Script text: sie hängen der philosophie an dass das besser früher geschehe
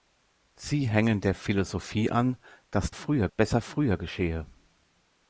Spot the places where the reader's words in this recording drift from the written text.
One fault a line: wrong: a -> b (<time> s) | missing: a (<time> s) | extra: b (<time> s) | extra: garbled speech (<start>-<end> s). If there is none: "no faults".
wrong: das -> früher (2.9 s)